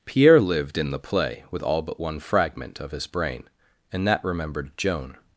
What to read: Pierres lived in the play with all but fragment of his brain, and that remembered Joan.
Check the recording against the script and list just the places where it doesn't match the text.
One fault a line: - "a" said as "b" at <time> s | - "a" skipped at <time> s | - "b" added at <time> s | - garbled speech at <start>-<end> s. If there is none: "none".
- "Pierres" said as "Pierre" at 0.1 s
- "one" added at 2.0 s